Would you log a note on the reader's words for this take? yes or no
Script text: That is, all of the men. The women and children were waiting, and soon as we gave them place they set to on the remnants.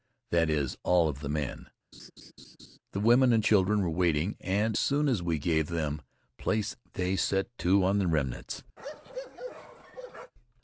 no